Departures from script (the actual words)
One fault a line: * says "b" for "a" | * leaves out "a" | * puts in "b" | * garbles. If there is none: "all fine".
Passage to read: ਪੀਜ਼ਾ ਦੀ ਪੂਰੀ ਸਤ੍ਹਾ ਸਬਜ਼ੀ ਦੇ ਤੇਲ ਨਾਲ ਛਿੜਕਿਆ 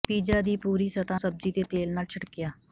all fine